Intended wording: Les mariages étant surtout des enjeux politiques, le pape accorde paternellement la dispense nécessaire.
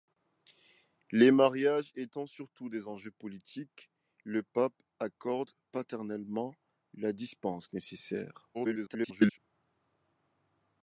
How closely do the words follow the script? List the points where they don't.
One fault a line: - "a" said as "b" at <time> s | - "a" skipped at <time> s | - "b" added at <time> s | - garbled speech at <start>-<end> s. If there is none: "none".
- garbled speech at 8.5-9.4 s